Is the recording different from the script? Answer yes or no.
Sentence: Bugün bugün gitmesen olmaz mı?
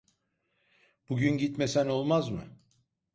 yes